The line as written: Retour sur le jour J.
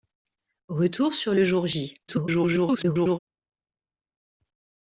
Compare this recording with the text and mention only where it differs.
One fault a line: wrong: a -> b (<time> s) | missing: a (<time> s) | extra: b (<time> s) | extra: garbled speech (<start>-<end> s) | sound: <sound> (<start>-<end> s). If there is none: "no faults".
extra: garbled speech (2.1-3.2 s)